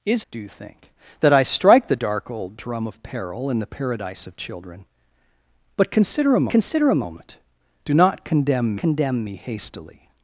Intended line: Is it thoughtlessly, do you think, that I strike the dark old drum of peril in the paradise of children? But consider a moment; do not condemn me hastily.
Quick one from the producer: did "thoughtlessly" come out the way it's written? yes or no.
no